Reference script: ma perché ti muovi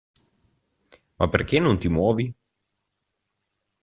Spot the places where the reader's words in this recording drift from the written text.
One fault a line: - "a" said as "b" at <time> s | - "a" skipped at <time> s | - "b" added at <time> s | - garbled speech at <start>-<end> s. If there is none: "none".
- "non" added at 1.6 s